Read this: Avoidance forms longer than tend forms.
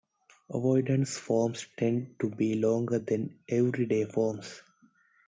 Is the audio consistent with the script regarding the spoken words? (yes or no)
no